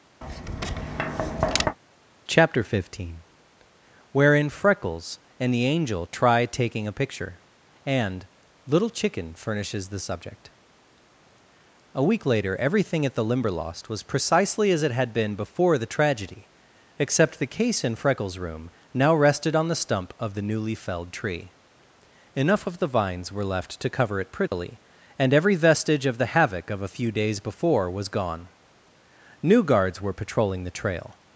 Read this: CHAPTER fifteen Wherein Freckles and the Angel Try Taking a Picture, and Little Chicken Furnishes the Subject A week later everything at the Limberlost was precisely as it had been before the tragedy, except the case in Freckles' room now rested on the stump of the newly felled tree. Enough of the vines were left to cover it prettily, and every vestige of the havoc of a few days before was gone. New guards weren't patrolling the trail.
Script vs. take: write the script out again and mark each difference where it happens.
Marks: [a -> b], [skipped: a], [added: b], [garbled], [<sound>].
[tap] CHAPTER fifteen Wherein Freckles and the Angel Try Taking a Picture, and Little Chicken Furnishes the Subject A week later everything at the Limberlost was precisely as it had been before the tragedy, except the case in Freckles' room now rested on the stump of the newly felled tree. Enough of the vines were left to cover it prettily, [dropout] and every vestige of the havoc of a few days before was gone. New guards [weren't -> were] patrolling the trail.